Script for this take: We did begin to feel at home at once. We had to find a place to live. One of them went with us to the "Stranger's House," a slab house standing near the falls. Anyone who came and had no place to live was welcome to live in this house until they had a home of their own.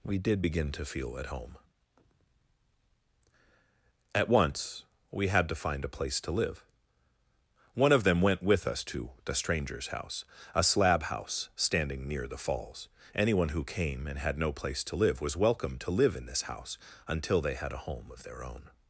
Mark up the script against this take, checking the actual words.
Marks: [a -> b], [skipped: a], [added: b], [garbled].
We did begin to feel at home at once. We had to find a place to live. One of them went with us to the "Stranger's House," a slab house standing near the falls. Anyone who came and had no place to live was welcome to live in this house until they had a home of their own.